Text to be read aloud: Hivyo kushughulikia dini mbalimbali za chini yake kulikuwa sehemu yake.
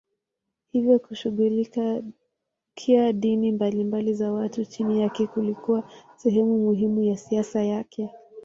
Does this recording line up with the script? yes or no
no